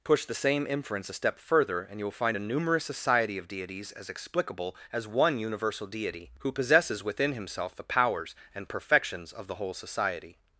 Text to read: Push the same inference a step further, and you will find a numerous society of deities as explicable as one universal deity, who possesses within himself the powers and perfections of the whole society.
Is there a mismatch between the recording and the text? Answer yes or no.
no